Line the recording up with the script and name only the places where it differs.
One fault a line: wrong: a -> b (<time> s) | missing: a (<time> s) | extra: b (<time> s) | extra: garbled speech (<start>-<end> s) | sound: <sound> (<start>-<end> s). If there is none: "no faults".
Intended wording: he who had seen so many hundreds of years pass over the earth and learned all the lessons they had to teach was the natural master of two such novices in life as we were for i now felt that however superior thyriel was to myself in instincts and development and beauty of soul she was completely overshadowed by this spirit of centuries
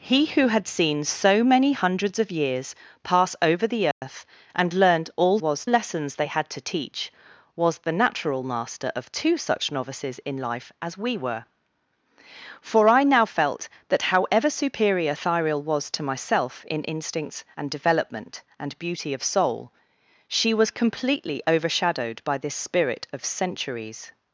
sound: dropout (3.9-4.0 s)
wrong: the -> was (5.4 s)